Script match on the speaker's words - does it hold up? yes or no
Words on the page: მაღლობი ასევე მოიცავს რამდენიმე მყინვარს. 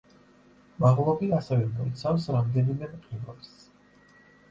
yes